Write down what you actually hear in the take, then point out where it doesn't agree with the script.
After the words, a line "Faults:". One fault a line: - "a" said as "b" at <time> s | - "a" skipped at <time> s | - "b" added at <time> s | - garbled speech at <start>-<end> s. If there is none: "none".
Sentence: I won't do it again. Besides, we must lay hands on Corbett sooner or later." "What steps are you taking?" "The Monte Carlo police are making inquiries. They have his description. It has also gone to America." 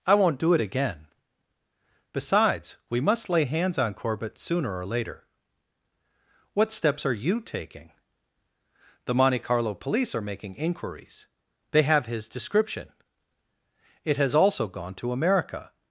I won't do it again. Besides, we must lay hands on Corbett sooner or later." "What steps are you taking?" "The Monte Carlo police are making inquiries. They have his description. It has also gone to America."
Faults:
none